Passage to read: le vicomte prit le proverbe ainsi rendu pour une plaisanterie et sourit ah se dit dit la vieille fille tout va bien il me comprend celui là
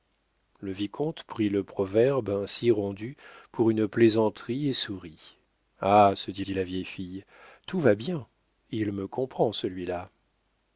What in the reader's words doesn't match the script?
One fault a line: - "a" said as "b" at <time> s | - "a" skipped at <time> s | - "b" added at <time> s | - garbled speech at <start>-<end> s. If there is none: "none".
none